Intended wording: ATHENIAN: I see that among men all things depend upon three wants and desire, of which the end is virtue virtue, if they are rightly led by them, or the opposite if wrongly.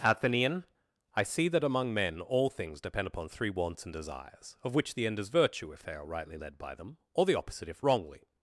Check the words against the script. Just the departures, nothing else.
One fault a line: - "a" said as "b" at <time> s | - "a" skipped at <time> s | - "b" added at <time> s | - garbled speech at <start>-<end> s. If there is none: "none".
- "desire" said as "desires" at 3.9 s
- "virtue" skipped at 5.7 s